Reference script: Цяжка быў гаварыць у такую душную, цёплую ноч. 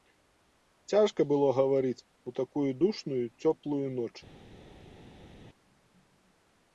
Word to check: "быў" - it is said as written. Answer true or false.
false